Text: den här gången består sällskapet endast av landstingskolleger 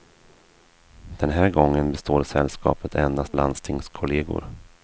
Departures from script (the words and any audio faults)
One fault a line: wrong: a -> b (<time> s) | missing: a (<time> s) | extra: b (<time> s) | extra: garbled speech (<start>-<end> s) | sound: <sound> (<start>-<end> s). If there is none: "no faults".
missing: av (3.4 s)